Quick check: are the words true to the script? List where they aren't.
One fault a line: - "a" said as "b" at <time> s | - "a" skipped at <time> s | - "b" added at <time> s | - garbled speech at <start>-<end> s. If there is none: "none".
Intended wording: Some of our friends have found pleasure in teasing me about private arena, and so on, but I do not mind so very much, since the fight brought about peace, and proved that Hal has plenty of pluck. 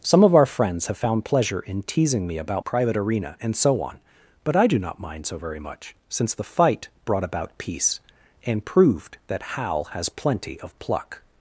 none